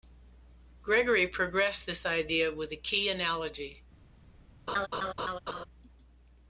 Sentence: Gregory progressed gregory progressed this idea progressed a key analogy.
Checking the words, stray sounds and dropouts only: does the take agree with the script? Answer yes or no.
no